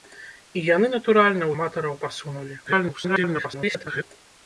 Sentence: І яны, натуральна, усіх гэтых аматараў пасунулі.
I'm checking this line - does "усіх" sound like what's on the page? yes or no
no